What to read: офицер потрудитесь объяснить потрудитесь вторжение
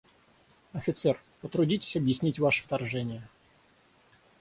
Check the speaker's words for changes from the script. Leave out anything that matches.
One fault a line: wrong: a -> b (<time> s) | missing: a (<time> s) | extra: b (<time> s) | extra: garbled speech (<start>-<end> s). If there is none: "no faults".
wrong: потрудитесь -> ваше (2.4 s)